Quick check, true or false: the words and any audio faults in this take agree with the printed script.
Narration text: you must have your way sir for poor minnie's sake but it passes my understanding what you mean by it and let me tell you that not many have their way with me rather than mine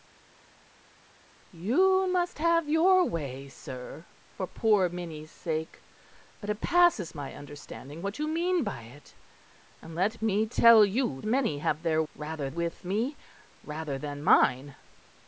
false